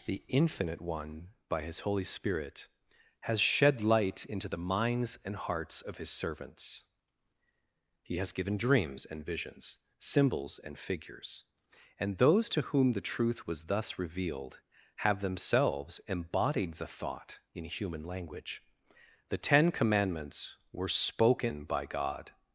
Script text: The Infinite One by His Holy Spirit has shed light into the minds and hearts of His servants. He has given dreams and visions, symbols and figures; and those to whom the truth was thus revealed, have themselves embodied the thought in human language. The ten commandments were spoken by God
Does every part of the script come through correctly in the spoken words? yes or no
yes